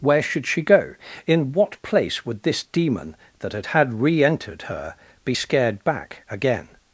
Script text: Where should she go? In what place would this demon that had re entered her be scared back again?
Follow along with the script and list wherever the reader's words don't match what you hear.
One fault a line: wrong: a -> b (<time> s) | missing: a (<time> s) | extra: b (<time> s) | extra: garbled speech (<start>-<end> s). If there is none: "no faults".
extra: had (3.7 s)